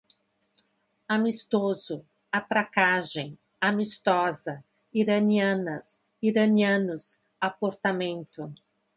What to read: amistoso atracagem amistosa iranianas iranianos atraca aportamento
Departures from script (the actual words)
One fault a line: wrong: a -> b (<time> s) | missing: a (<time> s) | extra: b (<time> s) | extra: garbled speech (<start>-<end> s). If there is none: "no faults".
missing: atraca (7.2 s)